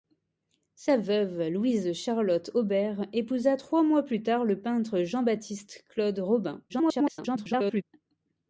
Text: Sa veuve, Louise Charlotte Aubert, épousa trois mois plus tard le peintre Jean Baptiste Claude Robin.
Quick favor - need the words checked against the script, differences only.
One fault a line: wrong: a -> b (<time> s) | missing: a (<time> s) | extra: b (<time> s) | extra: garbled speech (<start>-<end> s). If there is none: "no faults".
extra: garbled speech (6.7-7.8 s)